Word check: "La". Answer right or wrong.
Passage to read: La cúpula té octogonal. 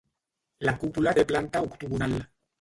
right